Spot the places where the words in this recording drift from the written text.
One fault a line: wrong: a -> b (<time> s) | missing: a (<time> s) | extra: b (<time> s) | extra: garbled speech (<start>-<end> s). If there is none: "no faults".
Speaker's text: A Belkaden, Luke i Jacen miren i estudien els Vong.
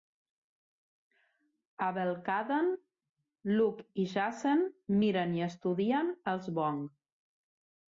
no faults